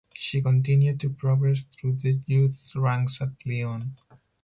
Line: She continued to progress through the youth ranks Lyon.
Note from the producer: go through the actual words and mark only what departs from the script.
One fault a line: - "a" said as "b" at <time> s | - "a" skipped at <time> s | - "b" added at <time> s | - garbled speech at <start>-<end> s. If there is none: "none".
- "at" added at 3.2 s